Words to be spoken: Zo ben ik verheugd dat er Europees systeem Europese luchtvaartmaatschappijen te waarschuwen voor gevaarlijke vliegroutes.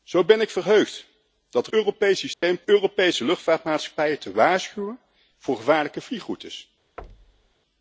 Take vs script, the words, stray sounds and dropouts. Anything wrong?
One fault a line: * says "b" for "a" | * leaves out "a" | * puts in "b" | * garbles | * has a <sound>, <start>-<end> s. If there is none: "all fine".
* has a dropout, 2.3-2.4 s
* has a thud, 7.0-7.5 s